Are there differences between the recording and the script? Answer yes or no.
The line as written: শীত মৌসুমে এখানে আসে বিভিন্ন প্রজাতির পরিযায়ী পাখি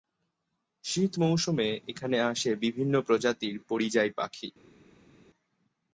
no